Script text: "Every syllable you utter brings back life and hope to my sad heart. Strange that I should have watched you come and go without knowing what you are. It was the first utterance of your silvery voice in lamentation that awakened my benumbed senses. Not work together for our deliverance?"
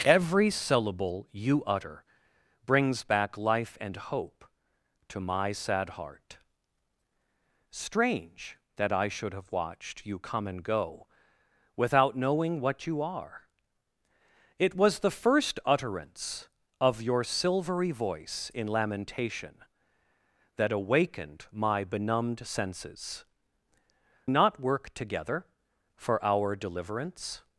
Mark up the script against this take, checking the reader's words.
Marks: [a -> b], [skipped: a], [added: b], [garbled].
"Every syllable you utter brings back life and hope to my sad heart. Strange that I should have watched you come and go without knowing what you are. It was the first utterance of your silvery voice in lamentation that awakened my benumbed senses. Not work together for our deliverance?"